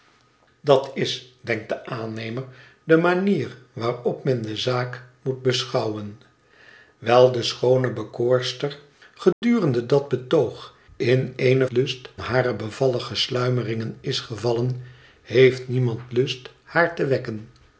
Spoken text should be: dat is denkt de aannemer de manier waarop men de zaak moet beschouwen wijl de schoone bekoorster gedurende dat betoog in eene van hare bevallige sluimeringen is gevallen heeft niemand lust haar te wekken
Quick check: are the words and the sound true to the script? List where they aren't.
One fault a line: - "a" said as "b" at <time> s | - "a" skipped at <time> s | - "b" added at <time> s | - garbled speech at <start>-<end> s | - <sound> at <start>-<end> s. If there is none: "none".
- dropout at 9.3-9.4 s
- "van" said as "lust" at 11.7 s